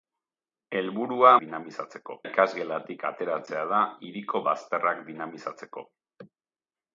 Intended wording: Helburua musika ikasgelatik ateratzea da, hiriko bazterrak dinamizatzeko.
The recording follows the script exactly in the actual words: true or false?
false